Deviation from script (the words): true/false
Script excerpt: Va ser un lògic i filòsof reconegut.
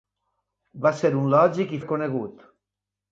true